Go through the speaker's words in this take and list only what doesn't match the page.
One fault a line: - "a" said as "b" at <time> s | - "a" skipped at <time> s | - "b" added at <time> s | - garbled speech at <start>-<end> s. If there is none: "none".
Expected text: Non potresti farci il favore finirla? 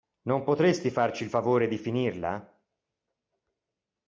- "di" added at 1.7 s